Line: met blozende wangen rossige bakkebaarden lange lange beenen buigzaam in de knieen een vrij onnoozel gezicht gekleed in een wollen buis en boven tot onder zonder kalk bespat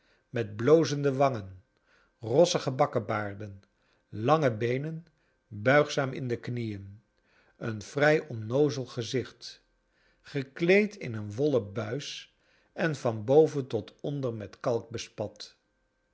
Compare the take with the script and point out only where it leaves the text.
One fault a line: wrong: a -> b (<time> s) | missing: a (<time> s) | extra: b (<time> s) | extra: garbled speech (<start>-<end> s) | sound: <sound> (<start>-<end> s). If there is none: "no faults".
missing: lange (4.5 s)
extra: van (13.0 s)
wrong: zonder -> met (14.3 s)